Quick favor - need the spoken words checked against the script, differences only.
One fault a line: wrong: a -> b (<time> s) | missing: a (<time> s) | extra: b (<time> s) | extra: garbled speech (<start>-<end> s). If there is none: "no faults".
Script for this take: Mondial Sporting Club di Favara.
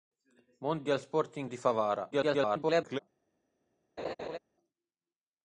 missing: Club (1.5 s)
extra: garbled speech (2.1-3.0 s)